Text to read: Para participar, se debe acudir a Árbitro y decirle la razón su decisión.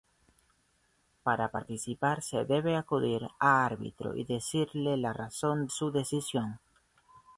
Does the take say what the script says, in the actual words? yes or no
yes